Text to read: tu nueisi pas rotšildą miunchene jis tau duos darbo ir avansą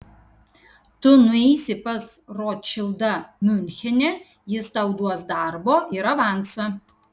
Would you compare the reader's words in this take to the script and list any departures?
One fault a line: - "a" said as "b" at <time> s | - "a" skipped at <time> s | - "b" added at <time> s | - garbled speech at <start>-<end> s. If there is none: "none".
none